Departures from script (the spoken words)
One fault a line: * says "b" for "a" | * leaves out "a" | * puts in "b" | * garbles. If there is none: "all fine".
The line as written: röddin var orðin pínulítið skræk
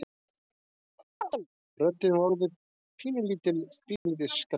all fine